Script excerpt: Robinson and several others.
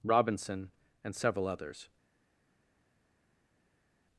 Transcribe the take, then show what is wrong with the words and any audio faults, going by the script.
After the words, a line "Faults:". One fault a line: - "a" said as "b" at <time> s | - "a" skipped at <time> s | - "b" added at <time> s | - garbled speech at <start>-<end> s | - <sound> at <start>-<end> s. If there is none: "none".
Robinson and several others.
Faults:
none